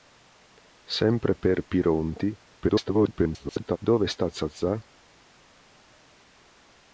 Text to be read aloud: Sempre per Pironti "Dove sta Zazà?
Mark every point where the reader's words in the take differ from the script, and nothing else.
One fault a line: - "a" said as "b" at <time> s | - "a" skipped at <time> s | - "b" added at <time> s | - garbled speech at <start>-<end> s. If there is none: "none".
- garbled speech at 2.6-3.8 s